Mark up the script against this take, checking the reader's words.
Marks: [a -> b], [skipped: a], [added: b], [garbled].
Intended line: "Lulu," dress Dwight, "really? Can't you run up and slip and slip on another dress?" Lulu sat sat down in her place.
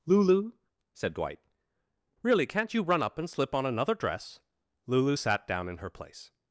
"Lulu," [dress -> said] Dwight, "really? Can't you run up and slip [skipped: and slip] on another dress?" Lulu sat [skipped: sat] down in her place.